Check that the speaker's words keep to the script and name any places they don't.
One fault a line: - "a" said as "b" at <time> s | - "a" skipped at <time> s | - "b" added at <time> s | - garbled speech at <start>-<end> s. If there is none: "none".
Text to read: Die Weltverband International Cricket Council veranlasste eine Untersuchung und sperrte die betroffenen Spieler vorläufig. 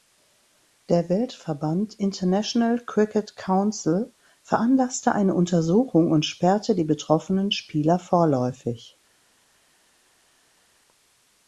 - "Die" said as "Der" at 0.9 s